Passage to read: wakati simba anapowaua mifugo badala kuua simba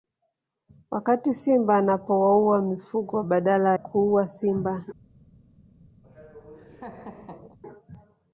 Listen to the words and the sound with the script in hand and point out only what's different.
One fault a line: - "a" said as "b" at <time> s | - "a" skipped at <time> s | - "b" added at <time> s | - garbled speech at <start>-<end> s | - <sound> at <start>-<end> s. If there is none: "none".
- laugh at 6.0-7.6 s